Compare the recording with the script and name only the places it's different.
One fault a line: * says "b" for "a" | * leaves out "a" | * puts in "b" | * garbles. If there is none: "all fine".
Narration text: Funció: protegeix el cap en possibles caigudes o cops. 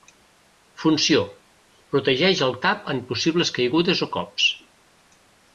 all fine